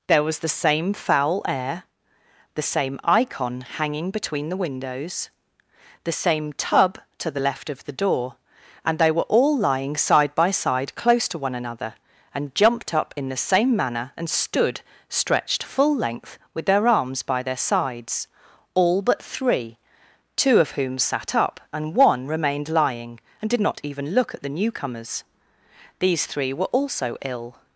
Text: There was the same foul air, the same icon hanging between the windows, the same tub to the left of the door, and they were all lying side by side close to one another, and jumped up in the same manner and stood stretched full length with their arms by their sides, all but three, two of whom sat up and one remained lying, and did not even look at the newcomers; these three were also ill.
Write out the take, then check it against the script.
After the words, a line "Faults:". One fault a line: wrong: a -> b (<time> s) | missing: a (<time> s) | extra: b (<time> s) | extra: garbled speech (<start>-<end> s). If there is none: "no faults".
There was the same foul air, the same icon hanging between the windows, the same tub to the left of the door, and they were all lying side by side close to one another, and jumped up in the same manner and stood stretched full length with their arms by their sides, all but three, two of whom sat up and one remained lying, and did not even look at the newcomers; these three were also ill.
Faults:
no faults